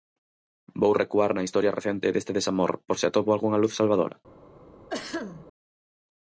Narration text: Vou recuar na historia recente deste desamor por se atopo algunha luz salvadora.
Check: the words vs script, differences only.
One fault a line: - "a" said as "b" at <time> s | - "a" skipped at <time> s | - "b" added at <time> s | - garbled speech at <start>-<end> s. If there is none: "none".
none